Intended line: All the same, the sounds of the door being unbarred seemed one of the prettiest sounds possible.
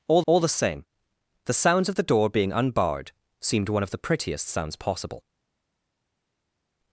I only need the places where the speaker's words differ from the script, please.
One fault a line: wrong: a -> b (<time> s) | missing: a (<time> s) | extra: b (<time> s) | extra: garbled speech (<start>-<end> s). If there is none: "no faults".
extra: all (0.3 s)